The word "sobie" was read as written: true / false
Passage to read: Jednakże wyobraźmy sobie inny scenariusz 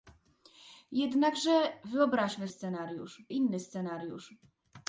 false